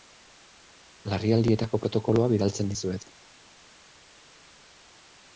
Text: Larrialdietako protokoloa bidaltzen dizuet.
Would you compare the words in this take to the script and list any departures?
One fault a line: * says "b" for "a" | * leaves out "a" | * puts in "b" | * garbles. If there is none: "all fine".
all fine